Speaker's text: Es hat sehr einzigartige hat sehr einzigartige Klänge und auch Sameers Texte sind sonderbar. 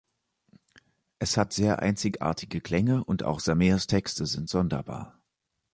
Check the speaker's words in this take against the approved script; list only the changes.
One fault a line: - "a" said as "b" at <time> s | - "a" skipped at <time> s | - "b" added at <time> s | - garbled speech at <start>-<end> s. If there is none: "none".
- "hat sehr einzigartige" skipped at 2.6 s